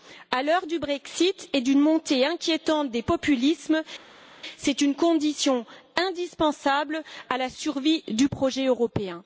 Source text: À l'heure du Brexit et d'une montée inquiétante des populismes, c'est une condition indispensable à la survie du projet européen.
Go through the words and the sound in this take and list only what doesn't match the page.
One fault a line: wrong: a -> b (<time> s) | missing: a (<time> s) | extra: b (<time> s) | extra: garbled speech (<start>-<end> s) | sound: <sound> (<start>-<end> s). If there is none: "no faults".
no faults